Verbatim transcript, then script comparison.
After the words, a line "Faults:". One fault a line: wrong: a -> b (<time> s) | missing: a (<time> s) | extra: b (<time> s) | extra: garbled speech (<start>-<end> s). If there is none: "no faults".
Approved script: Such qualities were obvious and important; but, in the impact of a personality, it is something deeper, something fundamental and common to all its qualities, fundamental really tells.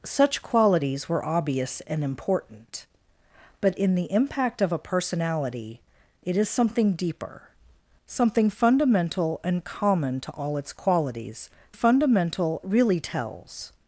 Such qualities were obvious and important; but, in the impact of a personality, it is something deeper, something fundamental and common to all its qualities, fundamental really tells.
Faults:
no faults